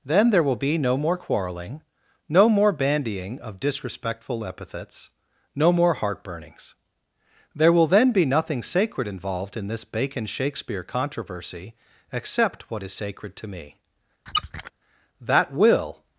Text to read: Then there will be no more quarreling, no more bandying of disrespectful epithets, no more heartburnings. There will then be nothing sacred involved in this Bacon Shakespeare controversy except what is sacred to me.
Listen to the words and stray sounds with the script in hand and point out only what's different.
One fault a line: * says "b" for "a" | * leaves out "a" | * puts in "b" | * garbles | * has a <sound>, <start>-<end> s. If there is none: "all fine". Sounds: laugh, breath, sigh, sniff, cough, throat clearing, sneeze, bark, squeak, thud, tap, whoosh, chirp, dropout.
* has a squeak, 14.3-14.7 s
* puts in "That will"